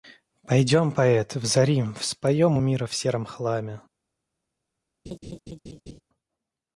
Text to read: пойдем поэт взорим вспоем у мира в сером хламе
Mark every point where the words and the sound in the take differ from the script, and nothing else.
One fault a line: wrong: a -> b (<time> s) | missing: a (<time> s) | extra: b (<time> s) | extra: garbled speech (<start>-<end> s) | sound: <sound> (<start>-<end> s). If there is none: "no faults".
sound: laugh (5.1-6.0 s)